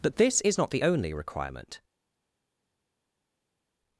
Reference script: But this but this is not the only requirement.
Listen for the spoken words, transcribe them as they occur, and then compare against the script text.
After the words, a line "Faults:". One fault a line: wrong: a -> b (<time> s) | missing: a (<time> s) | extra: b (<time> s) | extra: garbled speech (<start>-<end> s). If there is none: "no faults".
But this is not the only requirement.
Faults:
missing: but this (0.4 s)